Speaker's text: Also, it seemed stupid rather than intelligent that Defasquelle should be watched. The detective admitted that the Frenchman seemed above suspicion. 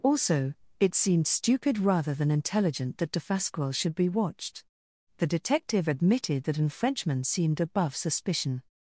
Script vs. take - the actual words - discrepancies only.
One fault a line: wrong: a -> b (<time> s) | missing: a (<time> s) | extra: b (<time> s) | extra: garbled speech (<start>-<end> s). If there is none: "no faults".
wrong: the -> an (6.6 s)